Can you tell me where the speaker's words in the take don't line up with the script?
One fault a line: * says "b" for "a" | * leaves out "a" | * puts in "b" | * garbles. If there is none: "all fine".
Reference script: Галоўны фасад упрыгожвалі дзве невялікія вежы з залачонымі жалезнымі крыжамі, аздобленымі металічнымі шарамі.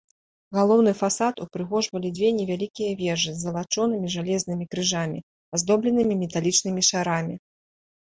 all fine